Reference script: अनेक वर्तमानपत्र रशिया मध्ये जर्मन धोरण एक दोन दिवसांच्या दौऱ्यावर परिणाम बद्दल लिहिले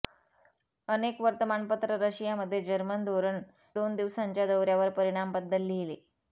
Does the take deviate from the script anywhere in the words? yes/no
yes